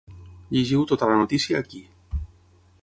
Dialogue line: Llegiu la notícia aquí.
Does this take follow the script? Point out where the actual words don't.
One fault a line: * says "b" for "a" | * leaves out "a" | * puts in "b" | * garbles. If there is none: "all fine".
* puts in "tota"